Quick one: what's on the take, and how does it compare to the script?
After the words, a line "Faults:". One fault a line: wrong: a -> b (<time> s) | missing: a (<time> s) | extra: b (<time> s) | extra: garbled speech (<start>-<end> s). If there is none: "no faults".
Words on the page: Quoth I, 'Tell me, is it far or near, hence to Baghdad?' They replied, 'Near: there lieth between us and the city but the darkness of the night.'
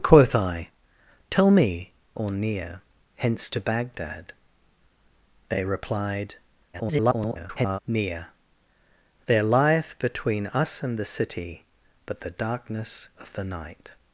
Quoth I, 'Tell me, or near, hence to Baghdad?' They replied, [garbled] 'Near: there lieth between us and the city but the darkness of the night.'
Faults:
missing: is it far (1.9 s)
extra: garbled speech (6.7-7.8 s)